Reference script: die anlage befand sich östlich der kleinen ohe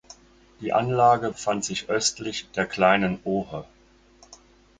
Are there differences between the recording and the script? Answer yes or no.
no